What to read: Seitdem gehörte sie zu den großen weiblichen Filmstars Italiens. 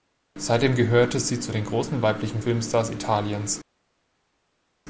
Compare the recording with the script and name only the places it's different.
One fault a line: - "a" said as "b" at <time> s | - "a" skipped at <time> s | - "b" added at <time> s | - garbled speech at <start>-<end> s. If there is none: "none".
none